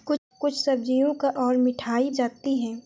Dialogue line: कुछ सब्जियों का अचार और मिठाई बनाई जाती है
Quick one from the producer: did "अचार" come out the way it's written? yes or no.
no